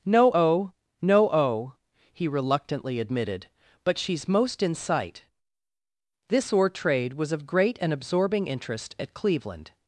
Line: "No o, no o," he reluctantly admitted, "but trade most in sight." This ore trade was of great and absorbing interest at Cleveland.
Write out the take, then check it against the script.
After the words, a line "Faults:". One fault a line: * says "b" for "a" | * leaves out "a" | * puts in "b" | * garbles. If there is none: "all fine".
"No o, no o," he reluctantly admitted, "but she's most in sight." This ore trade was of great and absorbing interest at Cleveland.
Faults:
* says "she's" for "trade"